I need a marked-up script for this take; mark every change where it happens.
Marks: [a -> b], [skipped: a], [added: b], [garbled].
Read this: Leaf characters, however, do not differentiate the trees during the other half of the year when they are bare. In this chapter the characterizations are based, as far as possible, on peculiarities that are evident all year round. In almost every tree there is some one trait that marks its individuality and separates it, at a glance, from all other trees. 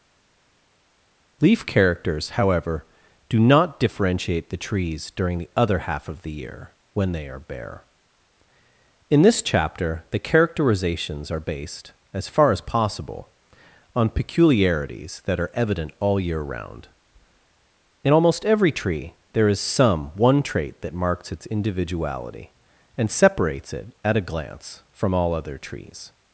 Leaf characters, however, do not differentiate the trees during the other half of the year when they are bare. In this chapter the characterizations are based, as far as possible, on peculiarities that are evident all year round. In almost every tree there is some one trait that marks its individuality and separates it, at a glance, from all other trees.